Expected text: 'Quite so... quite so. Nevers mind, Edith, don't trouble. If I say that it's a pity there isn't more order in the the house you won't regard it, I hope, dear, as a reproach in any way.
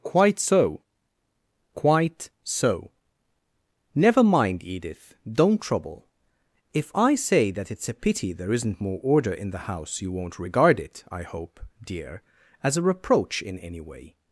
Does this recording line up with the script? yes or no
no